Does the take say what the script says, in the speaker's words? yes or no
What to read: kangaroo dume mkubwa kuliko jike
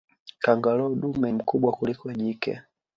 yes